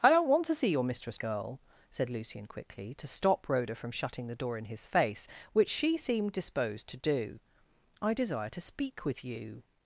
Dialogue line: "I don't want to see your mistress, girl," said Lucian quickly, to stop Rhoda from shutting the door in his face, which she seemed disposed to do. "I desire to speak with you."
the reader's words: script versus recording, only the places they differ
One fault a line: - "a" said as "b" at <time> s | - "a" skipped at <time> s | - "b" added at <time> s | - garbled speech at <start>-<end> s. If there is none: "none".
none